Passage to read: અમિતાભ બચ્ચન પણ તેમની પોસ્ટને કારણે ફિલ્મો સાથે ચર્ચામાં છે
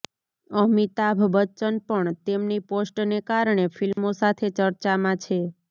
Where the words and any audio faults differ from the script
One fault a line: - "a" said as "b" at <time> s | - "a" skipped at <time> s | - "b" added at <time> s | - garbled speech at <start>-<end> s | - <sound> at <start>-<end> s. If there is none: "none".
- dropout at 3.9-4.0 s